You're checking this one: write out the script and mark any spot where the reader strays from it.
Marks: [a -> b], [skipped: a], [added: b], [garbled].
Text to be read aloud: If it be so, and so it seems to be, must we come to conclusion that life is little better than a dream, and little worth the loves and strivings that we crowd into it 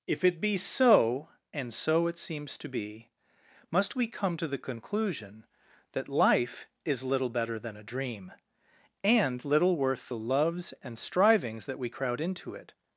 If it be so, and so it seems to be, must we come to [added: the] conclusion that life is little better than a dream, and little worth the loves and strivings that we crowd into it